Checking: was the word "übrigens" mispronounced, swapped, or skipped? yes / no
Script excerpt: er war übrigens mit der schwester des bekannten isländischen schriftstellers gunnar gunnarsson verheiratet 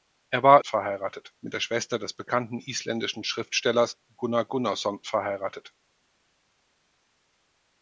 yes